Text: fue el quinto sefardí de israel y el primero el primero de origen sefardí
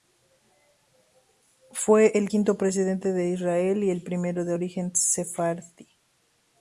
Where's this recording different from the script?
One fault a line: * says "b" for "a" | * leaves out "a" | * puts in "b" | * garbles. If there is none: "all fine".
* says "presidente" for "sefardí"
* leaves out "el primero"